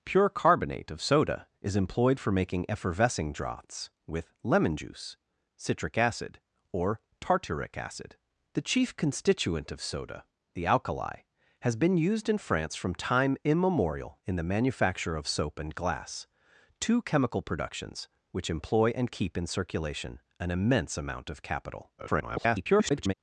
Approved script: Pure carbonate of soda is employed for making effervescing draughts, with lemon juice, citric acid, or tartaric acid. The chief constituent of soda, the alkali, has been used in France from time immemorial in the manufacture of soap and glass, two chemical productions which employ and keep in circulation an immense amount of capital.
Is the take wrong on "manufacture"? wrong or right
right